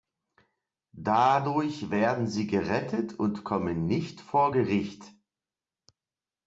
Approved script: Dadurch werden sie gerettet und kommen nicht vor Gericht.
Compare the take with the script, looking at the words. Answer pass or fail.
pass